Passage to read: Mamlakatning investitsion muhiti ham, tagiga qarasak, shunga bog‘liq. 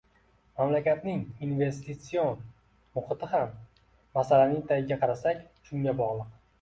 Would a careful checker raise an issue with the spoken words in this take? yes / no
yes